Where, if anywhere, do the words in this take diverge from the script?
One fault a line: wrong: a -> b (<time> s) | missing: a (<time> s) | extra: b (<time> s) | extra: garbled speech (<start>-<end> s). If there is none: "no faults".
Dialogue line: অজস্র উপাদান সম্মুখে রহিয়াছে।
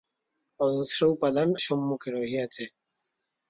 no faults